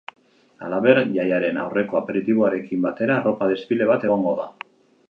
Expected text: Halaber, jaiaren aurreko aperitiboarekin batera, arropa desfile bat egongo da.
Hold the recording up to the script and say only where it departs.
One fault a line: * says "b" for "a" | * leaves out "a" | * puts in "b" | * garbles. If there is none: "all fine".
all fine